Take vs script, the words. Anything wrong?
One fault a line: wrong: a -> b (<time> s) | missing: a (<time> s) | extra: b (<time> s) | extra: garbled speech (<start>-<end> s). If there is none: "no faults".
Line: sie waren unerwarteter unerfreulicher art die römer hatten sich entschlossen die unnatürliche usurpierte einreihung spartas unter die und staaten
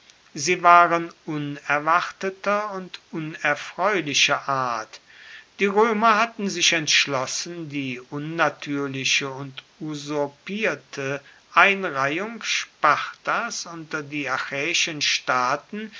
extra: und (2.7 s)
extra: und (9.3 s)
wrong: und -> achäischen (14.3 s)